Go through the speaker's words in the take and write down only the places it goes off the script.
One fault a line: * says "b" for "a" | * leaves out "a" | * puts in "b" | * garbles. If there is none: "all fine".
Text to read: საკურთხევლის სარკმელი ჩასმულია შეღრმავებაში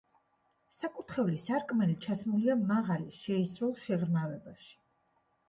* puts in "მაღალი შეისრულ"